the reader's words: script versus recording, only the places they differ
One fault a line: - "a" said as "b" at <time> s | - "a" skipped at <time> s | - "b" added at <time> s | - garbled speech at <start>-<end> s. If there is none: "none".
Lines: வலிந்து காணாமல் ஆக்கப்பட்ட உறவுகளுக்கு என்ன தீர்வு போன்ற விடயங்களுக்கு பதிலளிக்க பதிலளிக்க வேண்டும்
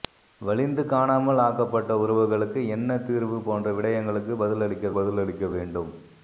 none